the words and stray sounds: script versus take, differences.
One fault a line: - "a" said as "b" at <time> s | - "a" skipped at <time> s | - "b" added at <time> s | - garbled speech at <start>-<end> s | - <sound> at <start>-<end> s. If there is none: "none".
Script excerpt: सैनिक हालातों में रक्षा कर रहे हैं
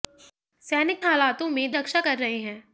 none